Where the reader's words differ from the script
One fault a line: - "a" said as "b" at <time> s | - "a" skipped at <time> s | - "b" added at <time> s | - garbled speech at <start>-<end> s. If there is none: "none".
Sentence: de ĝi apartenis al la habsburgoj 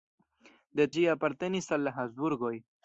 none